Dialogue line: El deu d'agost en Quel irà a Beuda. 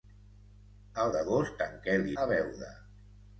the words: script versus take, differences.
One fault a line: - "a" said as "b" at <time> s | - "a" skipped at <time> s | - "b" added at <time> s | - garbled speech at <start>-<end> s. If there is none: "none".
- "deu" skipped at 1.1 s
- "irà" skipped at 2.1 s